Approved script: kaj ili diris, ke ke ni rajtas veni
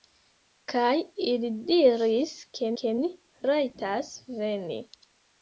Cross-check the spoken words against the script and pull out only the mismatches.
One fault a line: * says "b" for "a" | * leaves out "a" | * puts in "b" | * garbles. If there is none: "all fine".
all fine